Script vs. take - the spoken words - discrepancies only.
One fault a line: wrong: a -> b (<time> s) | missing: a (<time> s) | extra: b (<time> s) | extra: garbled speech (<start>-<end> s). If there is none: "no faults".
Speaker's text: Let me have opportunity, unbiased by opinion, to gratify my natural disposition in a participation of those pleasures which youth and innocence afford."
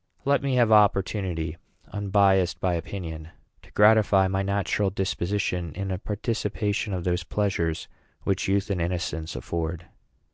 no faults